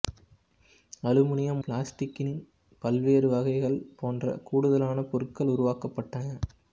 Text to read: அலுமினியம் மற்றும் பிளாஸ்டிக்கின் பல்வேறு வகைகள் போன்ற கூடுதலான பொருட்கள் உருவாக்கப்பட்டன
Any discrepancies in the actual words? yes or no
yes